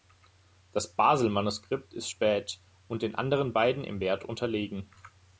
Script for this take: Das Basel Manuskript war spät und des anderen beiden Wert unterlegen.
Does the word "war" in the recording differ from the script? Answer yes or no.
yes